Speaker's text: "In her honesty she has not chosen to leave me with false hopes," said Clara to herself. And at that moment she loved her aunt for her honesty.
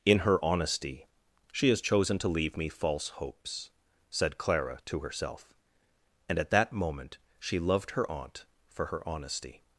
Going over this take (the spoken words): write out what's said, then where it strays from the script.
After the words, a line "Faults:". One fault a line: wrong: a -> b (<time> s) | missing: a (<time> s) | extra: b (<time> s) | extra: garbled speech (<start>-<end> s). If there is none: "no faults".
"In her honesty she has chosen to leave me false hopes," said Clara to herself. And at that moment she loved her aunt for her honesty.
Faults:
missing: not (1.8 s)
missing: with (2.7 s)